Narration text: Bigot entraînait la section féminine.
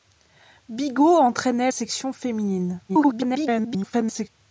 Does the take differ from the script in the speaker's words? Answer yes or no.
yes